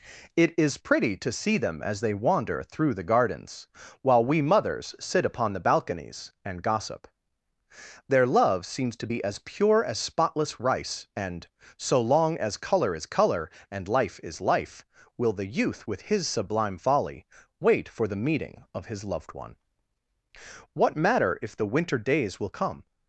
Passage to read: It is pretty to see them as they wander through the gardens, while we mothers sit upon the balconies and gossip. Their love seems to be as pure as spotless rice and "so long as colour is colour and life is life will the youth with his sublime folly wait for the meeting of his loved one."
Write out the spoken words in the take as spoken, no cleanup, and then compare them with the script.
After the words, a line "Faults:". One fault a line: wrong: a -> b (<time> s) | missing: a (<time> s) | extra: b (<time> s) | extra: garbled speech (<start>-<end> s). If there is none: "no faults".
It is pretty to see them as they wander through the gardens, while we mothers sit upon the balconies and gossip. Their love seems to be as pure as spotless rice and "so long as colour is colour and life is life will the youth with his sublime folly wait for the meeting of his loved one." What matter if the winter days will come
Faults:
extra: What matter if the winter days will come (20.7 s)